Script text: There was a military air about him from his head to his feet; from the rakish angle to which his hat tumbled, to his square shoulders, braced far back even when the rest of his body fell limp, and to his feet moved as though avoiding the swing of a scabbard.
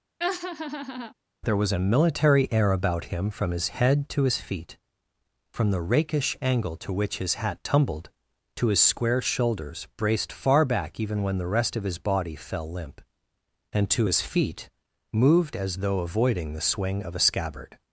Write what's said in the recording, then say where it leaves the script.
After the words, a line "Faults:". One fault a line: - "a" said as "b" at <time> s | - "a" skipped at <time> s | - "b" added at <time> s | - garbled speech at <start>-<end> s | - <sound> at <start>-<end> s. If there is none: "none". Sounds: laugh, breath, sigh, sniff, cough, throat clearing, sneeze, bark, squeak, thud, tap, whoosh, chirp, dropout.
There was a military air about him from his head to his feet; from the rakish angle to which his hat tumbled, to his square shoulders, braced far back even when the rest of his body fell limp, and to his feet moved as though avoiding the swing of a scabbard.
Faults:
- laugh at 0.2-1.1 s